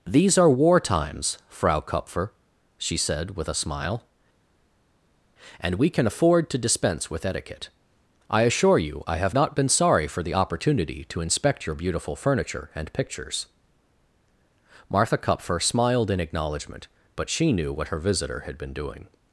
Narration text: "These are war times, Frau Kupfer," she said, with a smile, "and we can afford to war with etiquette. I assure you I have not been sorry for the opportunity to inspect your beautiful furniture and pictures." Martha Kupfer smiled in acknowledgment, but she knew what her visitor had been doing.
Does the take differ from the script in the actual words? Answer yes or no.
yes